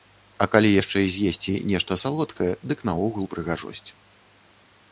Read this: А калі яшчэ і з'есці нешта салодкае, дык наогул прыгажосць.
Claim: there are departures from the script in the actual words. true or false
false